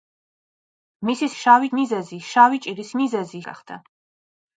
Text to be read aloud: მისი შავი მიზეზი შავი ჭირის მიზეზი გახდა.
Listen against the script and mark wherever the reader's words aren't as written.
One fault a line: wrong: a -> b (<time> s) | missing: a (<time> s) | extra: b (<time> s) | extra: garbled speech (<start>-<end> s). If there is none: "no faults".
no faults